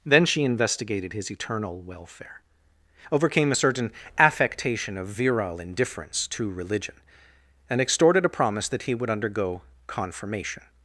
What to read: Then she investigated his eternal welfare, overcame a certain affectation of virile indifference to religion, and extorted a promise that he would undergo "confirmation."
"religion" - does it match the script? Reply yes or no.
yes